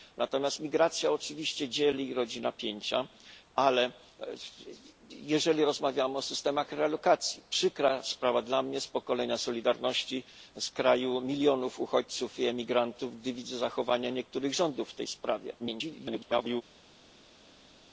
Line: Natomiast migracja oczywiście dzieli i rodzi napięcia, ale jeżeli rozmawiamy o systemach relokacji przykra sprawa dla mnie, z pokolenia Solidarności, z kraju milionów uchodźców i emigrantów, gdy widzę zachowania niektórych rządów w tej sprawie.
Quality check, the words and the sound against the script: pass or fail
fail